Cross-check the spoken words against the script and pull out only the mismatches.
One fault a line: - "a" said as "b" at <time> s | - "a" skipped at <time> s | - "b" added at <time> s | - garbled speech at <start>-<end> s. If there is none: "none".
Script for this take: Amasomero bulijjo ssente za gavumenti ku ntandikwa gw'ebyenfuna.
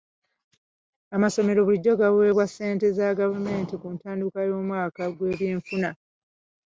- "gaweebwa" added at 2.0 s
- "y'omwaka" added at 4.5 s